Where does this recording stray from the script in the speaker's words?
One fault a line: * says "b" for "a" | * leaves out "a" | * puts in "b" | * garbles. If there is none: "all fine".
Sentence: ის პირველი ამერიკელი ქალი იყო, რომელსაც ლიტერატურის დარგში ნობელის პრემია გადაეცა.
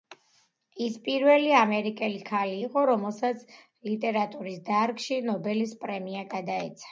all fine